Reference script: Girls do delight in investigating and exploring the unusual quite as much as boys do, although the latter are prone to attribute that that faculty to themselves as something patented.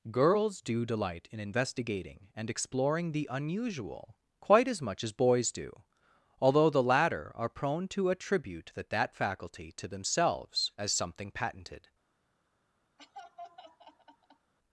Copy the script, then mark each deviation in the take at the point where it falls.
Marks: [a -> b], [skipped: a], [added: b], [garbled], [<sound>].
Girls do delight in investigating and exploring the unusual quite as much as boys do, although the latter are prone to attribute that that faculty to themselves as something patented. [laugh]